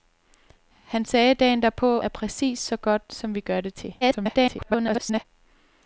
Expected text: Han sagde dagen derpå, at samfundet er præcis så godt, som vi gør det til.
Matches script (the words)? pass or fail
fail